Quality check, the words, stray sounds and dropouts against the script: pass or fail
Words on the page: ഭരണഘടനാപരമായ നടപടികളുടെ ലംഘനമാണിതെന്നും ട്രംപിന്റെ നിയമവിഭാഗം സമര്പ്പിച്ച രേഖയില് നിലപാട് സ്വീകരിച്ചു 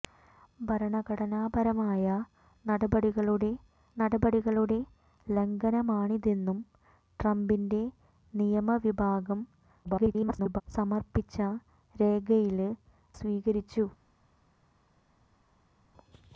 fail